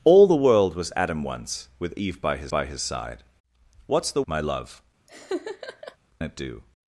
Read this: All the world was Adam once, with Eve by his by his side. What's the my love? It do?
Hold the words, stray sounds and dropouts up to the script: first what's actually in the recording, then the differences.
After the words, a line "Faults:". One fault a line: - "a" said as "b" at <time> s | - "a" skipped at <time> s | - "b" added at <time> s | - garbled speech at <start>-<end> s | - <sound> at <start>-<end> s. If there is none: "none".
All the world was Adam once, with Eve by his by his side. What's the my love? It do?
Faults:
- laugh at 5.1-6.0 s